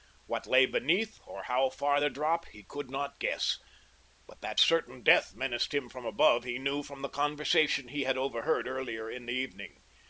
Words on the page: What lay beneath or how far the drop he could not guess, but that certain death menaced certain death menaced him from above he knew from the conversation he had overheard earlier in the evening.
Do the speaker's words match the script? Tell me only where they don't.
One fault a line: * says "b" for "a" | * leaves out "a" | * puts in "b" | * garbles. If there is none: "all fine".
* leaves out "certain death menaced"